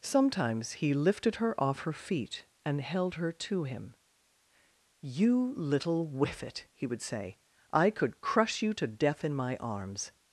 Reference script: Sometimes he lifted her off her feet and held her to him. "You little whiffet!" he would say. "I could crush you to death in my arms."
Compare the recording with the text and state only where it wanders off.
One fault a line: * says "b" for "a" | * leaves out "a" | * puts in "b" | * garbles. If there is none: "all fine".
all fine